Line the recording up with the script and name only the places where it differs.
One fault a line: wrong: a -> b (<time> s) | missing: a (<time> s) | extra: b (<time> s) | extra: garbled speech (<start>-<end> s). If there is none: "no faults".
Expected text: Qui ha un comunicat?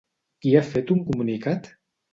extra: fet (0.7 s)